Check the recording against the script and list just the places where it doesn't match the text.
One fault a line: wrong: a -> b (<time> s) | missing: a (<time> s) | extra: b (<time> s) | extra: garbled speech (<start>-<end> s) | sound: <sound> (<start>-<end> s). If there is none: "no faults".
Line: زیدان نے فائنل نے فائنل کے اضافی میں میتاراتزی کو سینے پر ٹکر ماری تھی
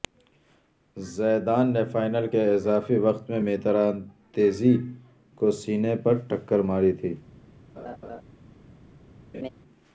missing: نے فائنل (2.3 s)
extra: وقت (3.0 s)
sound: laugh (7.8-8.2 s)
sound: laugh (9.3-9.5 s)